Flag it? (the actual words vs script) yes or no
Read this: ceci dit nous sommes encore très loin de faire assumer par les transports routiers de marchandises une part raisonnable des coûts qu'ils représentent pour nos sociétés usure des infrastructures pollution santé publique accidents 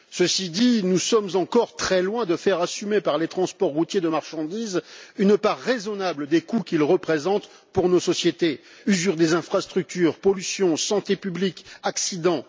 no